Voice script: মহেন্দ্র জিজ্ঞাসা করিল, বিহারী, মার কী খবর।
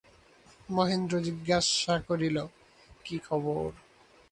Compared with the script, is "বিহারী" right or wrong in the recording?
wrong